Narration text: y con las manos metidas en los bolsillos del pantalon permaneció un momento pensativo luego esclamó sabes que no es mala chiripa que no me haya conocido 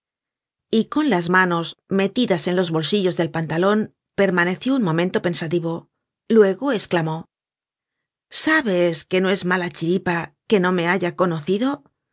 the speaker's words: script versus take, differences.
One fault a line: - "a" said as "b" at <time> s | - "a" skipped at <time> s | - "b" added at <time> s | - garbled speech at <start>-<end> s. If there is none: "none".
none